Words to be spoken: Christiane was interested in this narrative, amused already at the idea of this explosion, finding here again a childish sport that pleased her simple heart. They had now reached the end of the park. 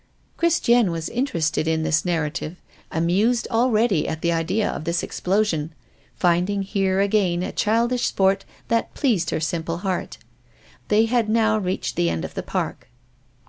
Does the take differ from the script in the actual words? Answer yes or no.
no